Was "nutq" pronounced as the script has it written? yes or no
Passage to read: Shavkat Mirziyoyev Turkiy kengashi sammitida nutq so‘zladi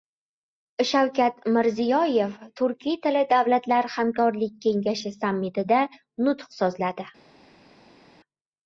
yes